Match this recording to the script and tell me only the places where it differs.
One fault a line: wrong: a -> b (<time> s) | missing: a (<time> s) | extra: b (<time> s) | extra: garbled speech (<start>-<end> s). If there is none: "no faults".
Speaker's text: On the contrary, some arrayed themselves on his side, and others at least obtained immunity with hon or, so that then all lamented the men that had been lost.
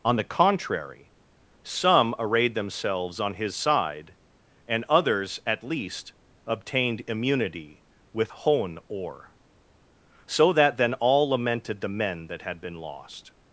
no faults